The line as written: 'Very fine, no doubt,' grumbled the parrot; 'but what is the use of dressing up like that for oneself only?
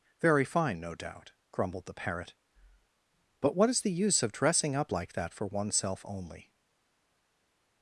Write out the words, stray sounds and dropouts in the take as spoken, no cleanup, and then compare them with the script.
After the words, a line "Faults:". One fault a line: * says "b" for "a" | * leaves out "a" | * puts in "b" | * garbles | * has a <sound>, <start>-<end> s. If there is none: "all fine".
'Very fine, no doubt,' grumbled the parrot; 'but what is the use of dressing up like that for oneself only?
Faults:
all fine